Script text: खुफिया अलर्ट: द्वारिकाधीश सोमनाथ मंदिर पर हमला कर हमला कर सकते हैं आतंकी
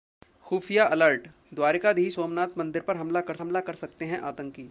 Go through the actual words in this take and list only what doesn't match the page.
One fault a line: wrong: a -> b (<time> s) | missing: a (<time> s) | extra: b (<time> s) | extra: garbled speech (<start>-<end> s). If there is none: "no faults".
no faults